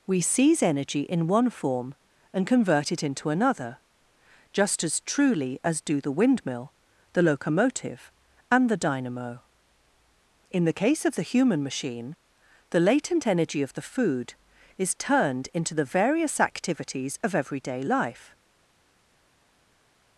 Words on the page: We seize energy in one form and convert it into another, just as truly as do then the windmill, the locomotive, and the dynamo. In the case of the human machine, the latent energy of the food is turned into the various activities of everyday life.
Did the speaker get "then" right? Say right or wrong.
wrong